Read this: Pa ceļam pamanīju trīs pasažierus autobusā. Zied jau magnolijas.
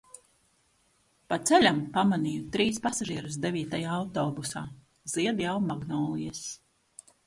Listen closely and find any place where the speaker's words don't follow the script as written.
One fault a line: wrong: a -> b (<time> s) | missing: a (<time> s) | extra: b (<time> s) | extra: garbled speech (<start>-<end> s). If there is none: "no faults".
extra: devītajā (3.5 s)